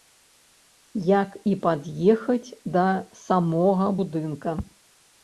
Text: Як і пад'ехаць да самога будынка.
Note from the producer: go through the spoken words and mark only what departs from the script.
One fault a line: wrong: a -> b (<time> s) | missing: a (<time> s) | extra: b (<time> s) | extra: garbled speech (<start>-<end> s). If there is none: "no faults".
no faults